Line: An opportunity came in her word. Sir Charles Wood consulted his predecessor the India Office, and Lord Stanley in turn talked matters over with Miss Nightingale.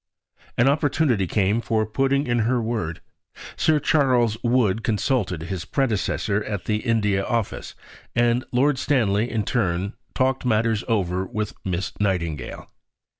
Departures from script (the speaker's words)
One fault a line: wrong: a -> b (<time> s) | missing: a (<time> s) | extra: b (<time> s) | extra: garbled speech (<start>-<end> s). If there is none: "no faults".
extra: for putting (1.6 s)
extra: at (6.4 s)